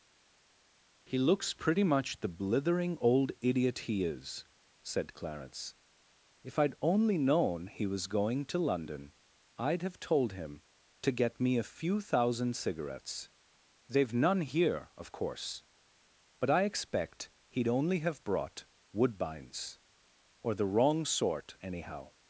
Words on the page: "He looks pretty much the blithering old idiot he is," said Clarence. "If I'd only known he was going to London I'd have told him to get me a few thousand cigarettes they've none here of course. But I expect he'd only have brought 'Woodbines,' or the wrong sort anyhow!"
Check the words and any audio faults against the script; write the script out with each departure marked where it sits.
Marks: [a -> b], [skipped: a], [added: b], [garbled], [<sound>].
"He looks pretty much the blithering old idiot he is," said Clarence. "If I'd only known he was going to London I'd have told him to get me a few thousand cigarettes they've none here of course. But I expect he'd only have brought 'Woodbines,' or the wrong sort anyhow!"